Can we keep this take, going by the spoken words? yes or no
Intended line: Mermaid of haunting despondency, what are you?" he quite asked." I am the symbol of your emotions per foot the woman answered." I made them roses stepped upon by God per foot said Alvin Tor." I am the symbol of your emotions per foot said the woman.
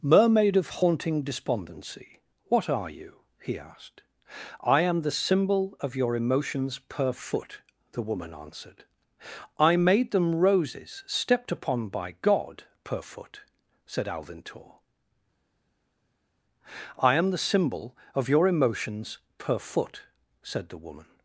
no